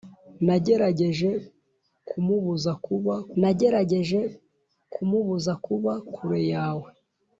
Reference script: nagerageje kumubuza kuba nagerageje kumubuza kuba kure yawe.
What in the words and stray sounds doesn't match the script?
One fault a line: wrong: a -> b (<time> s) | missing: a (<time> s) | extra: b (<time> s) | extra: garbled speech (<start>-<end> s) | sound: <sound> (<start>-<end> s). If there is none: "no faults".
no faults